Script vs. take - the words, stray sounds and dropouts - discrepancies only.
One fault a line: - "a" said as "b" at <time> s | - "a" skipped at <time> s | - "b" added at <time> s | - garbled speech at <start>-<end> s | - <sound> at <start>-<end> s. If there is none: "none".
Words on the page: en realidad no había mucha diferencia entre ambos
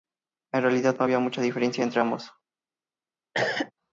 - cough at 3.3-3.7 s